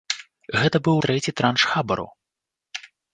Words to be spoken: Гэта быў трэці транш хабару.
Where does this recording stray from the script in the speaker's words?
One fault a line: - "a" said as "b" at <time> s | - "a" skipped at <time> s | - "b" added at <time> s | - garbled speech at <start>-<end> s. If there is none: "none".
none